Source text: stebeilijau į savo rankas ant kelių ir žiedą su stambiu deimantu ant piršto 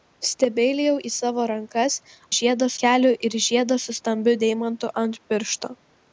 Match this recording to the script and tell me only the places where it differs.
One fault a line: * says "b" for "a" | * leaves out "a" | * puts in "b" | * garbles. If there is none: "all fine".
* says "žiedą" for "ant"